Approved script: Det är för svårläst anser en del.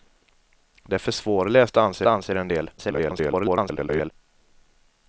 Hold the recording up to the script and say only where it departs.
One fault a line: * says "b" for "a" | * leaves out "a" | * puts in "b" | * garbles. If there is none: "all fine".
* puts in "anser"
* garbles